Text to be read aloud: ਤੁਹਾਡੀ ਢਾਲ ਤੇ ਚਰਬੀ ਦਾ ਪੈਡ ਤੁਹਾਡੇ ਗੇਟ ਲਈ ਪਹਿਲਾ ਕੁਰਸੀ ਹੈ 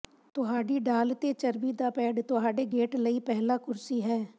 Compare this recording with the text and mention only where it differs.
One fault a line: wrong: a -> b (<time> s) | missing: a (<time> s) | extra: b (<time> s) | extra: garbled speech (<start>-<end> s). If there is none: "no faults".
no faults